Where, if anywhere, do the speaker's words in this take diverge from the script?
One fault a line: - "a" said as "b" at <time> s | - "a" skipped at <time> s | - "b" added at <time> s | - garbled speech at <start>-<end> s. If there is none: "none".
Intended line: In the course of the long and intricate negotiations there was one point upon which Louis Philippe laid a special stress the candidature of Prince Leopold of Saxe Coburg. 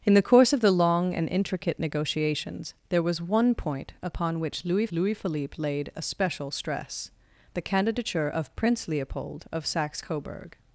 - "Louis" added at 4.9 s